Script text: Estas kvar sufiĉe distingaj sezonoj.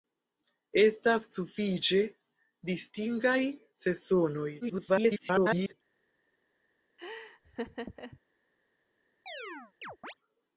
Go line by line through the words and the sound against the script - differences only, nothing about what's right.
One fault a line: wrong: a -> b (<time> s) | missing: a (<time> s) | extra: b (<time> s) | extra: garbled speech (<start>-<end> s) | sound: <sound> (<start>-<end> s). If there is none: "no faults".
missing: kvar (1.3 s)
extra: garbled speech (4.6-5.7 s)
sound: laugh (7.0-8.2 s)
sound: chirp (9.3-10.1 s)